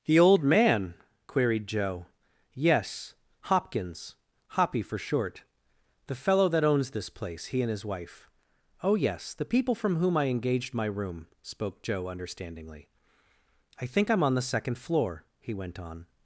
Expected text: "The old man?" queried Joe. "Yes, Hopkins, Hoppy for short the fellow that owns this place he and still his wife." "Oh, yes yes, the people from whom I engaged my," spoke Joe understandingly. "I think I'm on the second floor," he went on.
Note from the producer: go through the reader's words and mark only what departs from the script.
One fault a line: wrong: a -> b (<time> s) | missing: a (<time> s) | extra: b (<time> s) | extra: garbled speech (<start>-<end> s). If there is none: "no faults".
missing: still (7.7 s)
missing: yes (9.3 s)
extra: room (10.8 s)